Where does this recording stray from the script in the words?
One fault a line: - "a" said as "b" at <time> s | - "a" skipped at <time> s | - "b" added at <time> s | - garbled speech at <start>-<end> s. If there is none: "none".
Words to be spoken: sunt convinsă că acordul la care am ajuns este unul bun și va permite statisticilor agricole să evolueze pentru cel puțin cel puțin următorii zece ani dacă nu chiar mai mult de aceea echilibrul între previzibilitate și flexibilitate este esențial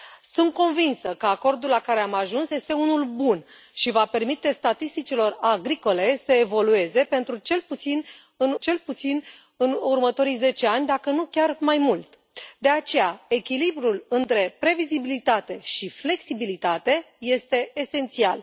none